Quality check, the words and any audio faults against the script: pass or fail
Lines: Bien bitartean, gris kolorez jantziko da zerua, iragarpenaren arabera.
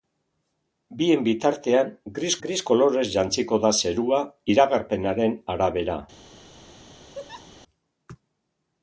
fail